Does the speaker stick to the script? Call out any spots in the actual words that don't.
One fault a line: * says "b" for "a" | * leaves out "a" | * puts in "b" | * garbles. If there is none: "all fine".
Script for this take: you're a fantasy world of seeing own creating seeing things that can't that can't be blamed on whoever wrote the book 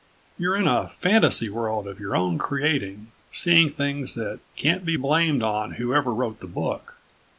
* puts in "in"
* says "your" for "seeing"
* leaves out "that can't"